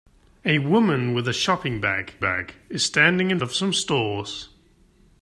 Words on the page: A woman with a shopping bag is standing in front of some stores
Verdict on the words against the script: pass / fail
fail